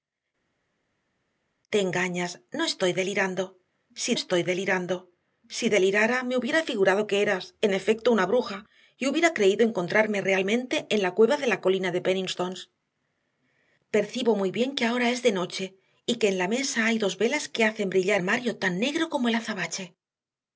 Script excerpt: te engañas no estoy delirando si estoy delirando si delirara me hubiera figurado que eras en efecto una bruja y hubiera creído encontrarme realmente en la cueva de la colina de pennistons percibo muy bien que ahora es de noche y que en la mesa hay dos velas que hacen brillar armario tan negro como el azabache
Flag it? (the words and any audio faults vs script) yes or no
no